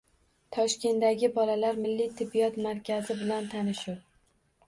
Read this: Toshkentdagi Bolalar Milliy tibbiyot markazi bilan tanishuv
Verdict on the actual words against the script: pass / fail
pass